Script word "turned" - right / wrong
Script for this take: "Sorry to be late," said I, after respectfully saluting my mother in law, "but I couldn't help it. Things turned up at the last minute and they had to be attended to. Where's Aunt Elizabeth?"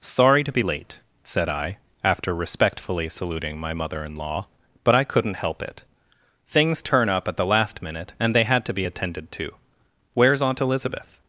wrong